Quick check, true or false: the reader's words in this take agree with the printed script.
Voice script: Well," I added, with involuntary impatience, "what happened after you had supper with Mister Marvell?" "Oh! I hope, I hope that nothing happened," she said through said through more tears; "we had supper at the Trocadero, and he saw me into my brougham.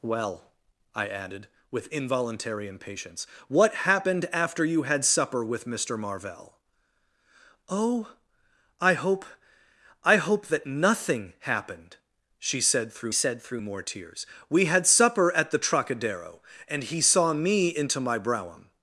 true